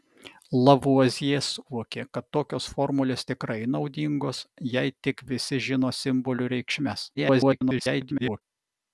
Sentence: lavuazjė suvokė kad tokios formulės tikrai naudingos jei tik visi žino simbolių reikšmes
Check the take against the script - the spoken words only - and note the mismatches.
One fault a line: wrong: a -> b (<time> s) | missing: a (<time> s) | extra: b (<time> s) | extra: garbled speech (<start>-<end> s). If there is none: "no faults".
extra: garbled speech (7.1-8.4 s)